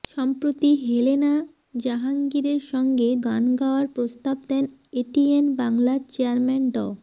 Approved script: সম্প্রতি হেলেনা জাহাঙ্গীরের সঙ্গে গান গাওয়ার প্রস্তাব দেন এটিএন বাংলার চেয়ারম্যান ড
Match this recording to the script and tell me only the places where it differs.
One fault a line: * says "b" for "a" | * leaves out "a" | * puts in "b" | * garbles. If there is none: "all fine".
all fine